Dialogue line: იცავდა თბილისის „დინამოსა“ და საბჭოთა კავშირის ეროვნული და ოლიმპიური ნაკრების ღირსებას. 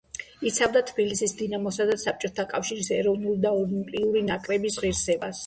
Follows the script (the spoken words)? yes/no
yes